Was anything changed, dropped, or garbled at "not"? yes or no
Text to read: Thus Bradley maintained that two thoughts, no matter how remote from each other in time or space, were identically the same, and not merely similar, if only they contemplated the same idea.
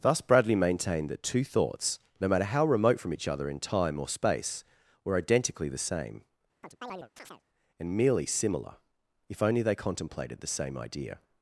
yes